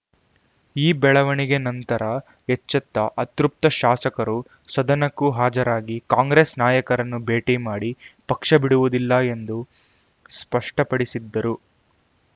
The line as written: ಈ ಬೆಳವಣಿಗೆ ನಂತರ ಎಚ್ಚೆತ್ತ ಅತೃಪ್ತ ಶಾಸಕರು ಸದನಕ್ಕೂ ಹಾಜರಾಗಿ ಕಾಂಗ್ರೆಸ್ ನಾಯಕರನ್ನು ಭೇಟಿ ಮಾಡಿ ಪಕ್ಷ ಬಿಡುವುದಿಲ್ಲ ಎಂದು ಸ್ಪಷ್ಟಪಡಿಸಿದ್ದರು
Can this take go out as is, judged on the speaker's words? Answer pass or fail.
pass